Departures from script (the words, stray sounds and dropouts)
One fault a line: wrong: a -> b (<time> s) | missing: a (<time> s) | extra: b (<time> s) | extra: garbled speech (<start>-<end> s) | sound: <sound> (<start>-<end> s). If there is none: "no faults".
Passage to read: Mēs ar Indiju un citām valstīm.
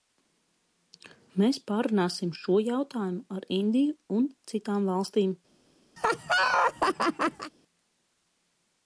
extra: pārrunāsim šo jautājumu (1.7 s)
sound: laugh (6.0-7.5 s)